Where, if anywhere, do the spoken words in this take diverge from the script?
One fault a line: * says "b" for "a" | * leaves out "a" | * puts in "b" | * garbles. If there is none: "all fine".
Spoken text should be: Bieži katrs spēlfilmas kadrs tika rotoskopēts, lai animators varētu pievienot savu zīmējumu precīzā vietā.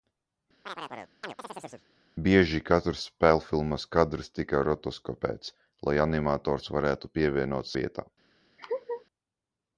* leaves out "savu zīmējumu precīzā"